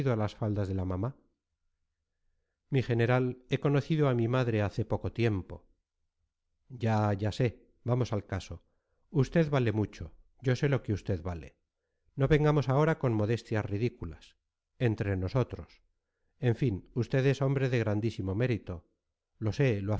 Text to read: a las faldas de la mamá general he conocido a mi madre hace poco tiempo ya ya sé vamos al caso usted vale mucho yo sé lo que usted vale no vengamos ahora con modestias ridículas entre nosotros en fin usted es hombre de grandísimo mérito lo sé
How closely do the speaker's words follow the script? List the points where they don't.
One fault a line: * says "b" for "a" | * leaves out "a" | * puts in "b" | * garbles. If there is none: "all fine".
* puts in "mi"